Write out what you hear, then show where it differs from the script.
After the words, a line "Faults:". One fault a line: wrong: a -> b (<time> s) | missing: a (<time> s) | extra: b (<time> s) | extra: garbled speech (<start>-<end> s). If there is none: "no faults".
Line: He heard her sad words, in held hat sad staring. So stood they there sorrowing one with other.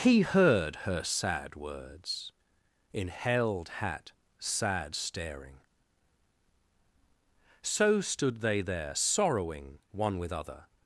He heard her sad words, in held hat sad staring. So stood they there sorrowing one with other.
Faults:
no faults